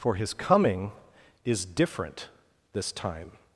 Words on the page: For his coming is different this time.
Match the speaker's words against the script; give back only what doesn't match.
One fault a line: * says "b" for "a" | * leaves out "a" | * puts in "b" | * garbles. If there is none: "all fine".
all fine